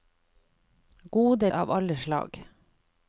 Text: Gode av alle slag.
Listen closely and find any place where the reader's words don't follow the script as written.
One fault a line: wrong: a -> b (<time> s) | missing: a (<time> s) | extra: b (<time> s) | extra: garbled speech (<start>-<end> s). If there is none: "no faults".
no faults